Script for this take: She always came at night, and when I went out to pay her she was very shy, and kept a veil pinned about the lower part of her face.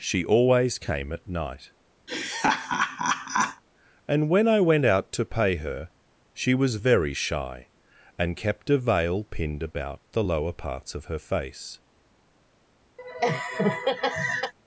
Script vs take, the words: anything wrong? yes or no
yes